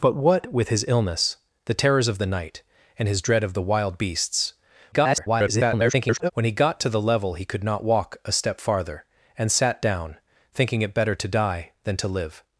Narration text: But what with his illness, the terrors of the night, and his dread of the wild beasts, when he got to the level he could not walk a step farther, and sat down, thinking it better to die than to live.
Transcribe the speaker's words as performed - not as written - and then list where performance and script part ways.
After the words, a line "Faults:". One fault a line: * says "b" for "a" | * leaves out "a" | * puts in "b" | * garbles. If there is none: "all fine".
But what with his illness, the terrors of the night, and his dread of the wild beasts, [garbled] when he got to the level he could not walk a step farther, and sat down, thinking it better to die than to live.
Faults:
* garbles